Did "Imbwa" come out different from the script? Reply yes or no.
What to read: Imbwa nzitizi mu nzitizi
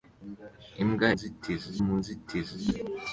no